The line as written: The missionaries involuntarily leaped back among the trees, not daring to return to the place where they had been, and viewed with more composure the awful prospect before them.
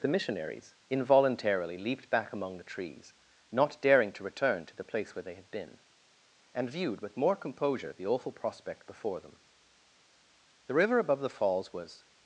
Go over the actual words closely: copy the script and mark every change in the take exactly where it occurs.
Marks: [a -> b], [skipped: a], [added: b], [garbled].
The missionaries involuntarily leaped back among the trees, not daring to return to the place where they had been, and viewed with more composure the awful prospect before them. [added: The river above the falls was]